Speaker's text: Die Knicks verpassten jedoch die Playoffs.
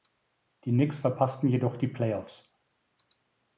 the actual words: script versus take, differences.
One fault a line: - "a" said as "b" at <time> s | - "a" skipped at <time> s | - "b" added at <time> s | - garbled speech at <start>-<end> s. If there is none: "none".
none